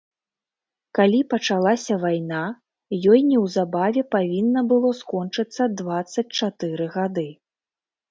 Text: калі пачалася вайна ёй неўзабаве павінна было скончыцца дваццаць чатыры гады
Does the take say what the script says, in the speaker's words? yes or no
yes